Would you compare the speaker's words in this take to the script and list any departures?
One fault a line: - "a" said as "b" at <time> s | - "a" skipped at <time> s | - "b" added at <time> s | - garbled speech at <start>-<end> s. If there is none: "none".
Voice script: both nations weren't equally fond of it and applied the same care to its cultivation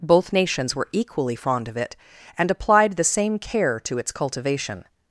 - "weren't" said as "were" at 0.8 s